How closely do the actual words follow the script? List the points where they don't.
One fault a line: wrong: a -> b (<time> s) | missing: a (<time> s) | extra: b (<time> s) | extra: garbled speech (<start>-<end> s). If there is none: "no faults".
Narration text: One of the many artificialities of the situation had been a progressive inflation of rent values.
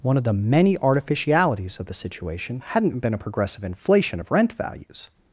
wrong: had -> hadn't (2.6 s)